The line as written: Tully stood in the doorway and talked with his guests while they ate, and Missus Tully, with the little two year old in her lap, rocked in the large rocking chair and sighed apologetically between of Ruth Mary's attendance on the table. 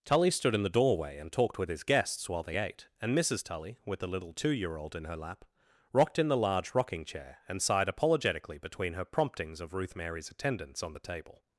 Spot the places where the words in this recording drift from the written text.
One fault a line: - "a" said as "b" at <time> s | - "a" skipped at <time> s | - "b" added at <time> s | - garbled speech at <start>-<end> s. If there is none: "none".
- "her promptings" added at 8.9 s